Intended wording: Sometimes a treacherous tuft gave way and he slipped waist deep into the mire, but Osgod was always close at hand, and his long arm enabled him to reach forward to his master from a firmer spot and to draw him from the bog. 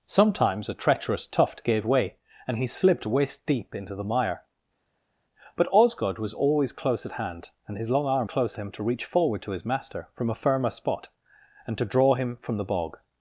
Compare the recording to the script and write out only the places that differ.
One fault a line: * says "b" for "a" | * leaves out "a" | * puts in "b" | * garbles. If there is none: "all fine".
* says "close" for "enabled"